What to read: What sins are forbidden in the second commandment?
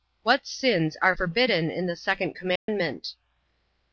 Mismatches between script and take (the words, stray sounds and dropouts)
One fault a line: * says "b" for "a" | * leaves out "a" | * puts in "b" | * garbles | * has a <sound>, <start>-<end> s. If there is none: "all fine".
* has a dropout, 2.6-2.7 s